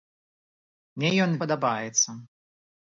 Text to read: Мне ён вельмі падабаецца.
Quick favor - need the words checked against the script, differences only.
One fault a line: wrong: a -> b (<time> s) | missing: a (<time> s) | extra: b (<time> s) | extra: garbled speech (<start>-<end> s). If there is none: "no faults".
missing: вельмі (1.3 s)